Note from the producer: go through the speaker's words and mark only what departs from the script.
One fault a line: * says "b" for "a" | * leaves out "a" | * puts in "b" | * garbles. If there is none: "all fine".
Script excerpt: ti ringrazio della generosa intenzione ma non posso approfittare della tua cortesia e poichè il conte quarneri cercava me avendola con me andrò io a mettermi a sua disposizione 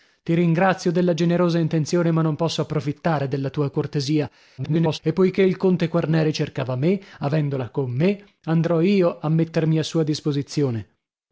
* garbles